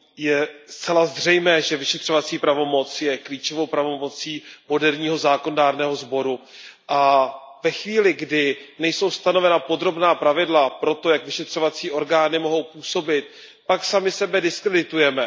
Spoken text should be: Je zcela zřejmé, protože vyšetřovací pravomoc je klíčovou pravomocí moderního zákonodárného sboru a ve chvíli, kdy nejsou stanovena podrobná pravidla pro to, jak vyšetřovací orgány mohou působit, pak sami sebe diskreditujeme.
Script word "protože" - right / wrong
wrong